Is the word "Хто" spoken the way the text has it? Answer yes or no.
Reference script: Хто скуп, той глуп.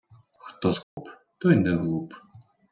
yes